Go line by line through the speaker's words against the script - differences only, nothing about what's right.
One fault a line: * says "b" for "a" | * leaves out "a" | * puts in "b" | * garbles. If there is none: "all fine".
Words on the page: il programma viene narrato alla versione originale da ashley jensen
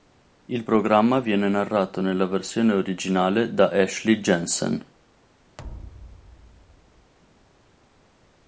* says "nella" for "alla"